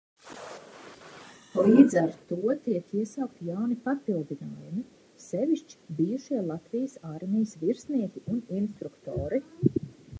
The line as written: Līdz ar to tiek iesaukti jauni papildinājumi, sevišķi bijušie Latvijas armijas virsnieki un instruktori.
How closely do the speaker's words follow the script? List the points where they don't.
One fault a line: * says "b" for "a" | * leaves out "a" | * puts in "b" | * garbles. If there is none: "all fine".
all fine